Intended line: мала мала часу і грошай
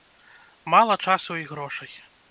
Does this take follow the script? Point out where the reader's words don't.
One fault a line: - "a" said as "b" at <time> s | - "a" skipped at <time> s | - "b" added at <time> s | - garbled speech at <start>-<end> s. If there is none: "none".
- "мала" skipped at 1.0 s